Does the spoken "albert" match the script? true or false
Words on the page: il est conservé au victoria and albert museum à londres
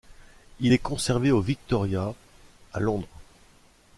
false